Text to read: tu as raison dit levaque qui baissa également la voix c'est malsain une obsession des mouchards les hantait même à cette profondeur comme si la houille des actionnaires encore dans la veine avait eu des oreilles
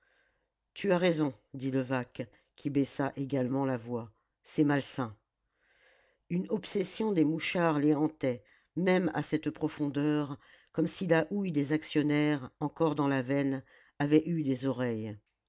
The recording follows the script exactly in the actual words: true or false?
true